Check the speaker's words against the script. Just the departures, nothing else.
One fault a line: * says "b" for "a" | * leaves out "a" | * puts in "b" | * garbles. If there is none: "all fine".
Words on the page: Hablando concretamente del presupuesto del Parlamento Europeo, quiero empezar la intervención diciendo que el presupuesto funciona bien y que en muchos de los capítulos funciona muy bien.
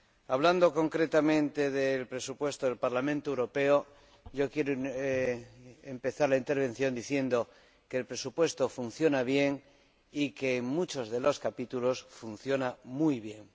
all fine